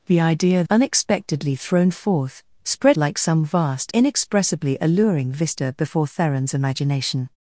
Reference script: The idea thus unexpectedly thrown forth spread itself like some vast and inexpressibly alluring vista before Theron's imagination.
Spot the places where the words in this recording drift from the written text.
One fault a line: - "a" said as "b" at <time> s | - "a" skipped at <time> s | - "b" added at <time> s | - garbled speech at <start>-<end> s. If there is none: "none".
- "thus" skipped at 0.6 s
- "itself" skipped at 3.0 s
- "and" skipped at 3.9 s